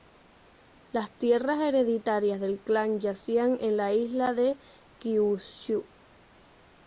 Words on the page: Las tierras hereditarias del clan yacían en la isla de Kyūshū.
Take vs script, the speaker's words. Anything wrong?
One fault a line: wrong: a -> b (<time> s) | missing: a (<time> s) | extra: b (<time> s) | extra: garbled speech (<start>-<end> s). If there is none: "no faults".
no faults